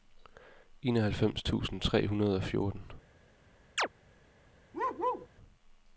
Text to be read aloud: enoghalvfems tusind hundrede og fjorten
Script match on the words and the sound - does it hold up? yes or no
no